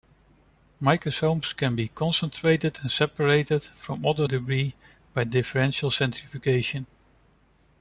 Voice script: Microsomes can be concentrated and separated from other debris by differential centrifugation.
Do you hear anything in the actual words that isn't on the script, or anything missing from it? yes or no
no